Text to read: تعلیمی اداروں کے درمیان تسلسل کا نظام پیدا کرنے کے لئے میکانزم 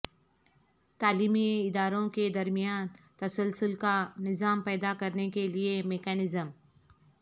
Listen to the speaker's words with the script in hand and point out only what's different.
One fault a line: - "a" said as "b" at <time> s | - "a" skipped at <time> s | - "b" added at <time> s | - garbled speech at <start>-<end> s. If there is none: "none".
none